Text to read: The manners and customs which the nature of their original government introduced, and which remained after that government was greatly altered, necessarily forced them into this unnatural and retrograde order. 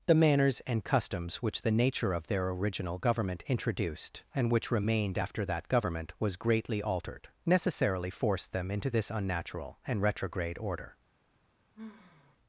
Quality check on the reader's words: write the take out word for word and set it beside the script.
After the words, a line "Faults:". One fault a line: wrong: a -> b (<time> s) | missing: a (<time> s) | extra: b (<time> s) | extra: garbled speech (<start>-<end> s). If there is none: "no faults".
The manners and customs which the nature of their original government introduced, and which remained after that government was greatly altered, necessarily forced them into this unnatural and retrograde order.
Faults:
no faults